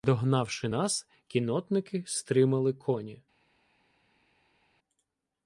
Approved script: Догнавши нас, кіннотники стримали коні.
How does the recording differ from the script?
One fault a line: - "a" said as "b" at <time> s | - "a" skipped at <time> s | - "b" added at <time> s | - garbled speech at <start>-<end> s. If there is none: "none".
none